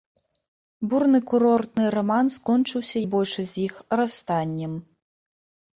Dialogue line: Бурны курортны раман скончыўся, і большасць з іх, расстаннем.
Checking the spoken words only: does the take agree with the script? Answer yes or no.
yes